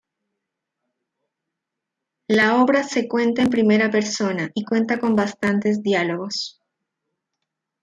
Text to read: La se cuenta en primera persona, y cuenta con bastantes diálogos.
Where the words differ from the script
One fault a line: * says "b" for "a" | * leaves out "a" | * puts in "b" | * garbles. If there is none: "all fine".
* puts in "obra"